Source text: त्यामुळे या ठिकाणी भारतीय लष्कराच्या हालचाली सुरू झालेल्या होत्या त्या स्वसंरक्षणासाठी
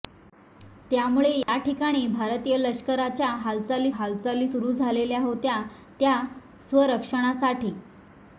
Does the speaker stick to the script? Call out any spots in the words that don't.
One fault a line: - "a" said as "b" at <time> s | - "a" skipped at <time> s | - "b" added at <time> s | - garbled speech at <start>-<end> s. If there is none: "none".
- "हालचाली" added at 4.0 s